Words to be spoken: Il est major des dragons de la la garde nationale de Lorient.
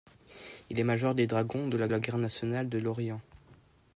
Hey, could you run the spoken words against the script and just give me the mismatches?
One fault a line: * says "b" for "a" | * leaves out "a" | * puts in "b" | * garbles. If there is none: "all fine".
all fine